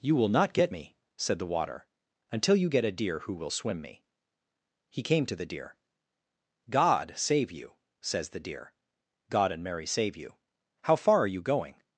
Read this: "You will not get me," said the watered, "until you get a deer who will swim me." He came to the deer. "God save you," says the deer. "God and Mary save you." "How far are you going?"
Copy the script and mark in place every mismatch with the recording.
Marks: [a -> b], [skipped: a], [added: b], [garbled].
"You will not get me," said the [watered, -> water] "until you get a deer who will swim me." He came to the deer. "God save you," says the deer. "God and Mary save you." "How far are you going?"